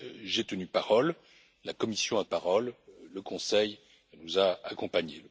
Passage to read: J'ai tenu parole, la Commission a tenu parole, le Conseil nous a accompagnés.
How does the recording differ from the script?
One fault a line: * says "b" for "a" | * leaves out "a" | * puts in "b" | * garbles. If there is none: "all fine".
* leaves out "tenu"